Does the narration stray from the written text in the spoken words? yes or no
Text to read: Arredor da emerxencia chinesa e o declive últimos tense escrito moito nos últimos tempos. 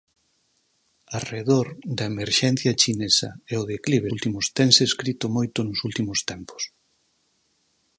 no